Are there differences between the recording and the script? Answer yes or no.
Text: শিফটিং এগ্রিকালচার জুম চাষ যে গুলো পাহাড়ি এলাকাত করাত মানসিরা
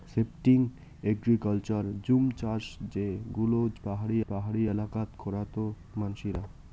yes